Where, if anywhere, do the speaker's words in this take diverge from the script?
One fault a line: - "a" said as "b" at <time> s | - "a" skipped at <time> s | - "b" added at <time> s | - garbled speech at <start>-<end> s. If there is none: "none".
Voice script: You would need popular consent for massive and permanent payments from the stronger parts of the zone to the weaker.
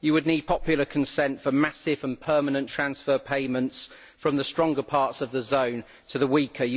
- "transfer" added at 2.7 s